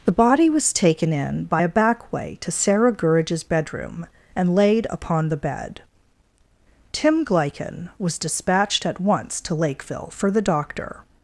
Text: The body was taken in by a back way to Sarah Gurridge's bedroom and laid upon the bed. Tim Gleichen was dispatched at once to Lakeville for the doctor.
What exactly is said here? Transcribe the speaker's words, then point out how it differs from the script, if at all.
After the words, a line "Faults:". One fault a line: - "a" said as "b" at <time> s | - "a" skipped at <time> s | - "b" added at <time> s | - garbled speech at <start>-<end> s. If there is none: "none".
The body was taken in by a back way to Sarah Gurridge's bedroom and laid upon the bed. Tim Gleichen was dispatched at once to Lakeville for the doctor.
Faults:
none